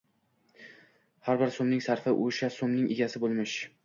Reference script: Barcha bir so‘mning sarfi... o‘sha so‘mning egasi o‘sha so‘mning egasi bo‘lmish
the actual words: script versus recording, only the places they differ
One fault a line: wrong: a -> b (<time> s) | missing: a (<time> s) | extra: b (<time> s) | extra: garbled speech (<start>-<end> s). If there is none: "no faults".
wrong: Barcha -> Har (1.3 s)
missing: o‘sha so‘mning egasi (3.2 s)